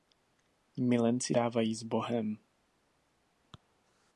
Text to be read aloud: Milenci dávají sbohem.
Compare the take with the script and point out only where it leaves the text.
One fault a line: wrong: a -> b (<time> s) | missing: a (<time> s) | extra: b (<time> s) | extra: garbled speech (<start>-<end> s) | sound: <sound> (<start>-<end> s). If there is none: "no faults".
no faults